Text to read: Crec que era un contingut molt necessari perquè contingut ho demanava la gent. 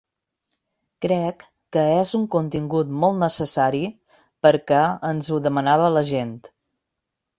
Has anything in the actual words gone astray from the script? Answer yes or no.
yes